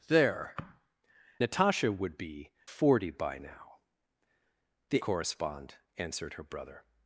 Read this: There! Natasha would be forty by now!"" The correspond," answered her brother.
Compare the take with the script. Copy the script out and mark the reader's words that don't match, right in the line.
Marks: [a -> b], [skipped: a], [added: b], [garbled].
There! Natasha would be forty by now!"" The correspond," answered her brother.